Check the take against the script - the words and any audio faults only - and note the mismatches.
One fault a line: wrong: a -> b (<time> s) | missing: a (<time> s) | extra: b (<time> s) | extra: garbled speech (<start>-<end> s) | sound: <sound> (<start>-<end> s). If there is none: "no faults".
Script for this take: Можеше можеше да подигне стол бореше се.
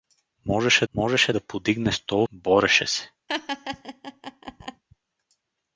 sound: laugh (3.3-4.8 s)